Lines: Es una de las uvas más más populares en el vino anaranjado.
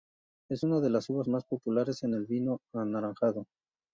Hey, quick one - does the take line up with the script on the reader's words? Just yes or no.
no